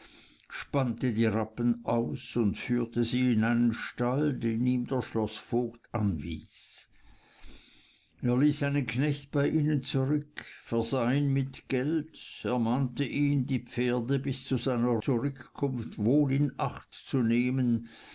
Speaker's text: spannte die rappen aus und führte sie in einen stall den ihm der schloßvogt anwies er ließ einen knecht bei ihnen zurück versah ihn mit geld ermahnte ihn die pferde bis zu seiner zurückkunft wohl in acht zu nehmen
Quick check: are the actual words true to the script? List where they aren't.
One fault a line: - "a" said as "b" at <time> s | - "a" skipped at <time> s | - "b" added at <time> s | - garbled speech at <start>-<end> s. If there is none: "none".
none